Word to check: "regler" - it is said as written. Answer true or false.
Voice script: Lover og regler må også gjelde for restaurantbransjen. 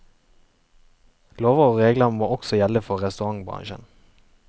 true